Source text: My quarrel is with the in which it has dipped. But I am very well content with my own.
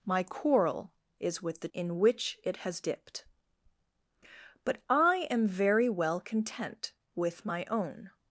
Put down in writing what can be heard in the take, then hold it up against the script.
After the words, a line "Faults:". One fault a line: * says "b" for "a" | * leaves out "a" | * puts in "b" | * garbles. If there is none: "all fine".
My quarrel is with the in which it has dipped. But I am very well content with my own.
Faults:
all fine